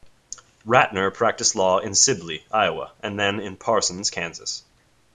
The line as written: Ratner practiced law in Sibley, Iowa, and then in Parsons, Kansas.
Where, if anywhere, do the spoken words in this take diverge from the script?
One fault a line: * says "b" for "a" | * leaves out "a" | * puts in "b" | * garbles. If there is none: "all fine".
all fine